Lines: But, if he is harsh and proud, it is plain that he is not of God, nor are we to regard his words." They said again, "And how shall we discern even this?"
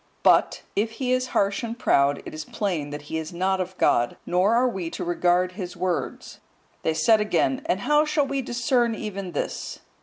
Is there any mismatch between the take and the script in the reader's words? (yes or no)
no